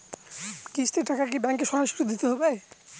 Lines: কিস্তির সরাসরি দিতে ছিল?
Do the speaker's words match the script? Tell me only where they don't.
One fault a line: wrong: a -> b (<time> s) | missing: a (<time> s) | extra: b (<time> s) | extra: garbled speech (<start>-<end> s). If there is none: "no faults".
extra: টাকা কি ব্যাঙ্কে (1.1 s)
wrong: ছিল -> হবে (2.3 s)